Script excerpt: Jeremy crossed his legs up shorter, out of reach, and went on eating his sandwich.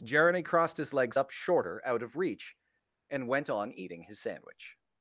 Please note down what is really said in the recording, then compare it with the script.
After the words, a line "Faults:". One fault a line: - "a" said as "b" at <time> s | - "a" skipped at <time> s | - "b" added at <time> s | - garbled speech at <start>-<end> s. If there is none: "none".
Jeremy crossed his legs up shorter, out of reach, and went on eating his sandwich.
Faults:
none